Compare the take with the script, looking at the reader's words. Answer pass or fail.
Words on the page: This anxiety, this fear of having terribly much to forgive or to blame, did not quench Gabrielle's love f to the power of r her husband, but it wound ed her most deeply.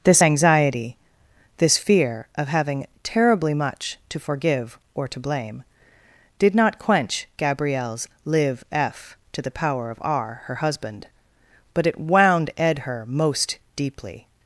fail